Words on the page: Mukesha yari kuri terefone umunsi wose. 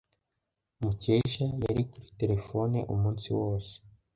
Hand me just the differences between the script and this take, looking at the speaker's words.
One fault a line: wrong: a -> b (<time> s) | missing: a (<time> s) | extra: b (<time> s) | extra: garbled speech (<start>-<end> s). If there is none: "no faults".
no faults